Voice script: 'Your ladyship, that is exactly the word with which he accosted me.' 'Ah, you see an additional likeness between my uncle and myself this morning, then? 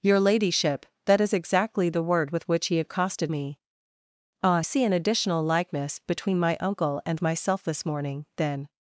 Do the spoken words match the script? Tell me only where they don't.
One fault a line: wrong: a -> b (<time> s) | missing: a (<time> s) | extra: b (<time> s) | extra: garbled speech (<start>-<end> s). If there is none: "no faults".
missing: you (4.6 s)